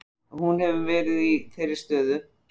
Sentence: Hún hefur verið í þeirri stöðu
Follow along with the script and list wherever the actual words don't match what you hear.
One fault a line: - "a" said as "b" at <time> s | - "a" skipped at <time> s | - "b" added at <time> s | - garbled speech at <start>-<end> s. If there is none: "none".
none